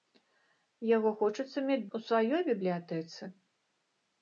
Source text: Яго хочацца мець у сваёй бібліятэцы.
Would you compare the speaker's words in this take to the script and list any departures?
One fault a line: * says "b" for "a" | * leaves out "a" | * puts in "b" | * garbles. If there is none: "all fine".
all fine